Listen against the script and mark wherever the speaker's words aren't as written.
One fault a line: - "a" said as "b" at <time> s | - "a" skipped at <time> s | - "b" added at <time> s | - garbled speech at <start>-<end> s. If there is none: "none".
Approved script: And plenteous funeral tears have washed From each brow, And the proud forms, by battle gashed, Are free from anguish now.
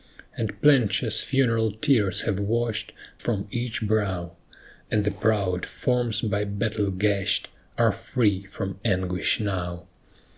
none